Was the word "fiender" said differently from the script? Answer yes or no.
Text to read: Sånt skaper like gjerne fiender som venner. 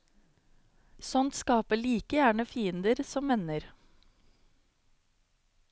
no